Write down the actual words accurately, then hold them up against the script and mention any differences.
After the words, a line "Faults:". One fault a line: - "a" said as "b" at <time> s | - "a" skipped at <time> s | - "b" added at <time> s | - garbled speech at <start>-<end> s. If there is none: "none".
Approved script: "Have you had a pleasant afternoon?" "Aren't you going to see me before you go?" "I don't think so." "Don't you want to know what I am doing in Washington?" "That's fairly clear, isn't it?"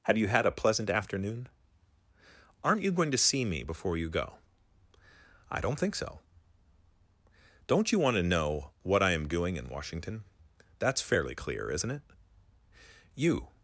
"Have you had a pleasant afternoon?" "Aren't you going to see me before you go?" "I don't think so." "Don't you want to know what I am doing in Washington?" "That's fairly clear, isn't it?" "You
Faults:
- "You" added at 13.1 s